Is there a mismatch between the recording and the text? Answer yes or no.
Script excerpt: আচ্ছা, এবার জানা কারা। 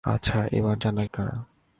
no